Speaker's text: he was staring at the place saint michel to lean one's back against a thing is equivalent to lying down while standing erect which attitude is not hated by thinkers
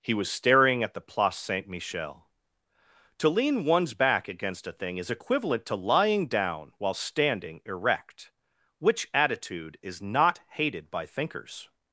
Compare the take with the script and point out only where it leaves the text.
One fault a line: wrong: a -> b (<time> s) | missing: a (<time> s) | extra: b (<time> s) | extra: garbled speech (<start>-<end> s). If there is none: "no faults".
no faults